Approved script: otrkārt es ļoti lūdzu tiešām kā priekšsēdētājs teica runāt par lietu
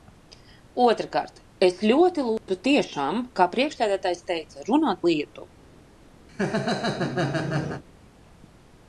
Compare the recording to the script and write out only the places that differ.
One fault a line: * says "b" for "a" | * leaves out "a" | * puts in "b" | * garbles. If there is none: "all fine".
* leaves out "par"